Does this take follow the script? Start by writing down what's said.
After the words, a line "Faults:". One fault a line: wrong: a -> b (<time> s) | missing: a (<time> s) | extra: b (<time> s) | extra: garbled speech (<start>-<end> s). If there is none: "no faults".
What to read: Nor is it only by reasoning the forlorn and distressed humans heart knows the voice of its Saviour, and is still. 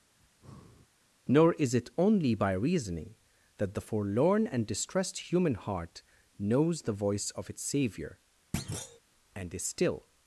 Nor is it only by reasoning that the forlorn and distressed human heart knows the voice of its Saviour, and is still.
Faults:
extra: that (3.6 s)
wrong: humans -> human (5.3 s)